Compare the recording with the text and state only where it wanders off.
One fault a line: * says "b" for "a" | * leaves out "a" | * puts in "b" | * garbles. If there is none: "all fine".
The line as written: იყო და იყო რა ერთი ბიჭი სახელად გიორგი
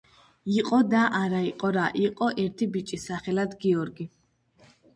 * puts in "არა"
* puts in "იყო"